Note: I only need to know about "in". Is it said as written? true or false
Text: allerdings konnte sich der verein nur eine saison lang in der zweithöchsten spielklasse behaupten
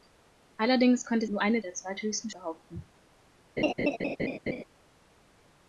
false